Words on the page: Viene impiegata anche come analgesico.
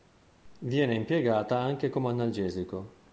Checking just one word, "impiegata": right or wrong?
right